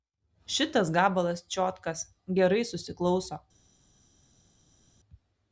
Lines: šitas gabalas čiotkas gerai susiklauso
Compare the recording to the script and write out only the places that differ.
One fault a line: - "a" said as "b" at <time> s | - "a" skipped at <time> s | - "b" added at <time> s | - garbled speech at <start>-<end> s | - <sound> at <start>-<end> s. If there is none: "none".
none